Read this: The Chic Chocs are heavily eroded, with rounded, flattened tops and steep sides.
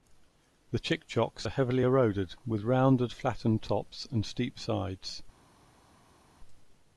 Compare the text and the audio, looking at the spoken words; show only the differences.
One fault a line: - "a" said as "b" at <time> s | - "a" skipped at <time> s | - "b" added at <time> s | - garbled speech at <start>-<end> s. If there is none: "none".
none